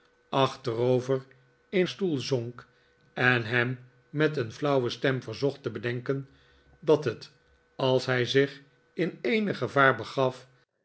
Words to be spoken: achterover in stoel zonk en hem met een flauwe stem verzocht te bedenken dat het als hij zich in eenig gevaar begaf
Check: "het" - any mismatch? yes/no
no